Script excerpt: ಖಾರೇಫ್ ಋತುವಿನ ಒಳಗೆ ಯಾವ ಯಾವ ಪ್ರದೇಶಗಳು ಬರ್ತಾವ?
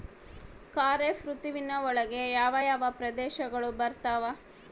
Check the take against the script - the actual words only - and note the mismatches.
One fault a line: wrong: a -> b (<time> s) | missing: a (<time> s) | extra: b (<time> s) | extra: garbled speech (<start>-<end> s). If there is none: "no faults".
no faults